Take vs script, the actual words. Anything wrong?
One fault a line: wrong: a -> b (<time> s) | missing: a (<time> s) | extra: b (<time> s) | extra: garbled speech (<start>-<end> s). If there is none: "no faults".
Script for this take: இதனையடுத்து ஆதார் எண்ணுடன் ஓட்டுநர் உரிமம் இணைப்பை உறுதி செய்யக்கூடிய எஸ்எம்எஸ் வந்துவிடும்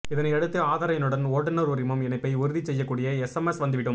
no faults